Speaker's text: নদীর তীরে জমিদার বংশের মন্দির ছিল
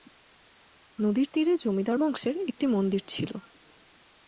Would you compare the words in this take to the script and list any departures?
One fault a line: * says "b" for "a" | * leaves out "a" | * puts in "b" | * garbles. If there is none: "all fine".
* puts in "একটি"